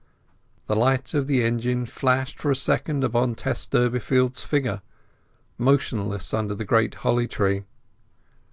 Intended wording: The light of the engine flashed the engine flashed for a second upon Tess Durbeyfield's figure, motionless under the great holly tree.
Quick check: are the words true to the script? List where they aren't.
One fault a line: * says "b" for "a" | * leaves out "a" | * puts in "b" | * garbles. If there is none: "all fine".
* leaves out "the engine flashed"